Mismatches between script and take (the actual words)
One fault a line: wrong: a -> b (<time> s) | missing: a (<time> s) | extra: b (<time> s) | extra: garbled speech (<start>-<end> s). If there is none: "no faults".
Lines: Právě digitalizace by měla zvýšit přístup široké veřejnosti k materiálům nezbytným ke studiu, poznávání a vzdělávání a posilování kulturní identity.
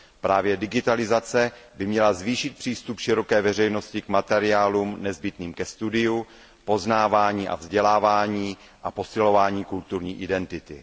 no faults